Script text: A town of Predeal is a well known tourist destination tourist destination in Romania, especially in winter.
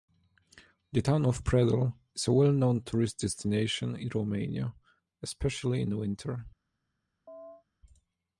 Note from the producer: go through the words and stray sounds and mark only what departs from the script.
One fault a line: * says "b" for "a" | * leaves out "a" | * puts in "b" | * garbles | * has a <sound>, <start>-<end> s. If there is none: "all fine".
* says "The" for "A"
* leaves out "tourist destination"
* has a chirp, 7.3-7.6 s